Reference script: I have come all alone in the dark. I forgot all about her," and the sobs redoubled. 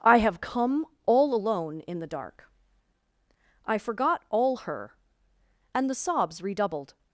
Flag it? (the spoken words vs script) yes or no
yes